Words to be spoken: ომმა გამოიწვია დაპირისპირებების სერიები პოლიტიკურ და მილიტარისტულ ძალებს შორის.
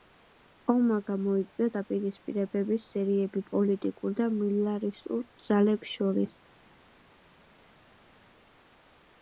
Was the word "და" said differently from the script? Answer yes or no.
no